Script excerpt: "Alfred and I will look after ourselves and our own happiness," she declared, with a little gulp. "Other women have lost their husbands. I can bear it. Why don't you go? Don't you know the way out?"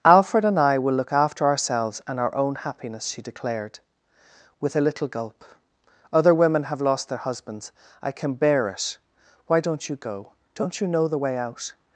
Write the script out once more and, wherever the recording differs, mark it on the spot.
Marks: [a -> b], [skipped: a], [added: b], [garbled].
"Alfred and I will look after ourselves and our own happiness," she declared, with a little gulp. "Other women have lost their husbands. I can bear it. Why don't you go? Don't you know the way out?"